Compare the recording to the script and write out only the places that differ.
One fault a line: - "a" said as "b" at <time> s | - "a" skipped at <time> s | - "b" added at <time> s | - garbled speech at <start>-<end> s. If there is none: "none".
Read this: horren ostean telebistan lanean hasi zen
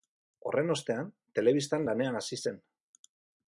none